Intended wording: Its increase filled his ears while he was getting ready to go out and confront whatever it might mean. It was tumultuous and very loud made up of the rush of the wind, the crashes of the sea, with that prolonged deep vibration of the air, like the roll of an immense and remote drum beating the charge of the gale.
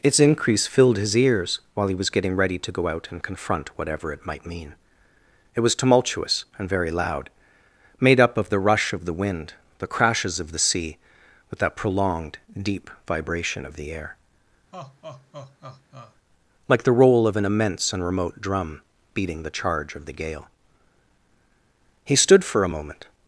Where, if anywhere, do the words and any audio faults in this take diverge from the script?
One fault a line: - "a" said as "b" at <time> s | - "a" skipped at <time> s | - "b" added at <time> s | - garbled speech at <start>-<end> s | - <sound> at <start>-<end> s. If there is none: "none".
- laugh at 14.7-16.2 s
- "He stood for a moment" added at 22.0 s